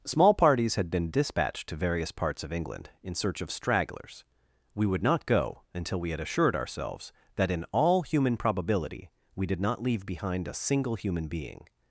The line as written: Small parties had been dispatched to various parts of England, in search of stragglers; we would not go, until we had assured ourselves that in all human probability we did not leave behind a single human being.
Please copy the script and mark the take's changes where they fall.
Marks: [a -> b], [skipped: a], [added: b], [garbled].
Small parties had been dispatched to various parts of England, in search of stragglers; we would not go, until we had assured ourselves that in all human probability we did not leave behind a single human being.